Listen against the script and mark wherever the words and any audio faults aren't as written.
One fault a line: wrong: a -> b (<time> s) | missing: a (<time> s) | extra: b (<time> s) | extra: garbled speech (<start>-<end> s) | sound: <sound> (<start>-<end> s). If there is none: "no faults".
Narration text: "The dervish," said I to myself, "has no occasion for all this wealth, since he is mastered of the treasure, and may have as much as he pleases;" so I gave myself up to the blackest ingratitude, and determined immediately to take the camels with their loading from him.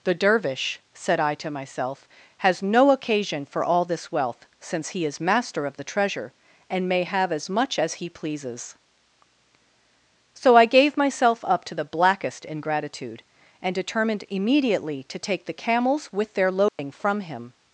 wrong: mastered -> master (5.2 s)
sound: dropout (16.7-16.8 s)